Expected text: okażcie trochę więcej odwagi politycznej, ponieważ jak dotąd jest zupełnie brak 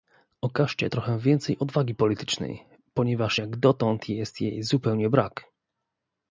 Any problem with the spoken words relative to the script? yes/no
yes